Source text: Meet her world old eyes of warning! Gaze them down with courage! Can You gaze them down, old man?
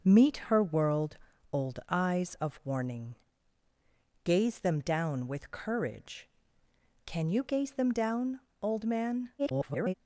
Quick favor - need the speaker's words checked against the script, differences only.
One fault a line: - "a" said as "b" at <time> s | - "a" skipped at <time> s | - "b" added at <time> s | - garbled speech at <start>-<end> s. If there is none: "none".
- garbled speech at 9.4-9.9 s